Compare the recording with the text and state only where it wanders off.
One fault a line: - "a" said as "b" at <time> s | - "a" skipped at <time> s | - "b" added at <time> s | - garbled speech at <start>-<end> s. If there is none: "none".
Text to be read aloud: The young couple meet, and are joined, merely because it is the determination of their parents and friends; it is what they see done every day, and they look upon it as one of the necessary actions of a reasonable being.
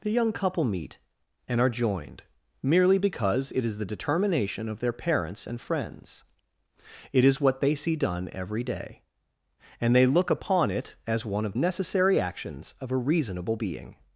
- "the" skipped at 11.5 s